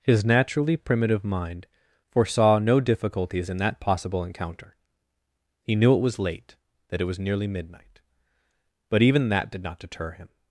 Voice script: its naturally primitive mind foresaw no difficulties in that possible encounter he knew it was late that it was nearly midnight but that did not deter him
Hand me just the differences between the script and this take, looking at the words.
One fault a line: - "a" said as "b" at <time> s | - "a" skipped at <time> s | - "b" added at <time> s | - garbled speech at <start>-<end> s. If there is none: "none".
- "its" said as "his" at 0.0 s
- "even" added at 9.0 s